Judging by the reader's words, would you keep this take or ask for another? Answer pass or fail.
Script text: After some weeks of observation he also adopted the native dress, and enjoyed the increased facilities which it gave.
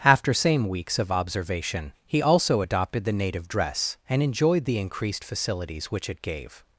fail